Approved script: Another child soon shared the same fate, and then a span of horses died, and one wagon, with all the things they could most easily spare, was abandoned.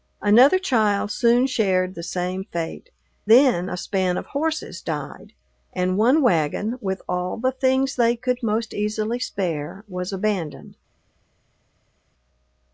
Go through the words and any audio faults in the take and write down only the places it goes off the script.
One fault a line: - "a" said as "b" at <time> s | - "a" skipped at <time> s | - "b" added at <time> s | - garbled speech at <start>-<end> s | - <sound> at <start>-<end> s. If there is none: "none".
- "and" skipped at 2.9 s